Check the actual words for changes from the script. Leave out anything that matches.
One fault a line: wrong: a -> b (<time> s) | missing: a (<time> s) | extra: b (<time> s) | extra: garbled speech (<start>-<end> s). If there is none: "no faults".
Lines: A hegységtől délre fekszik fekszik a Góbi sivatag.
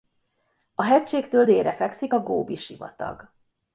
missing: fekszik (2.1 s)